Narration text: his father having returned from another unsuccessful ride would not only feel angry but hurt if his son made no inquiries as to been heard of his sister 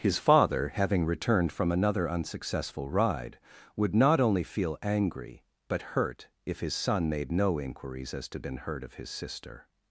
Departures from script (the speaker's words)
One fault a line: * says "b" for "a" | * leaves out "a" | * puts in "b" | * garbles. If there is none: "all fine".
all fine